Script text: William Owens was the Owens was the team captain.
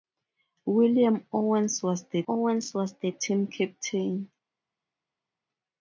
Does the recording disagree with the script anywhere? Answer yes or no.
no